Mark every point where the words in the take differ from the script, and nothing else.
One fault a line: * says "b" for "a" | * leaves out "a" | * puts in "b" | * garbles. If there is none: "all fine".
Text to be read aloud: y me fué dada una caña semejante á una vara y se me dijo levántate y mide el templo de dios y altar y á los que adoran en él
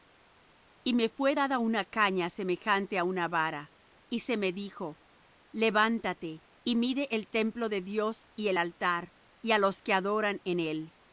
* puts in "el"